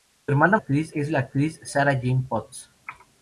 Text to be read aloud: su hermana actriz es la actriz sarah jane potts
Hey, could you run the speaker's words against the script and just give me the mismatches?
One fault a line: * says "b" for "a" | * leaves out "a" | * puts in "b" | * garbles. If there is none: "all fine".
all fine